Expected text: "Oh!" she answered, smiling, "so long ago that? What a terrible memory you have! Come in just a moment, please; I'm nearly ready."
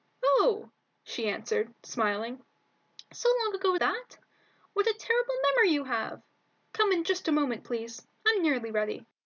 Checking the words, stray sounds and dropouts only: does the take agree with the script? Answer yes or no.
yes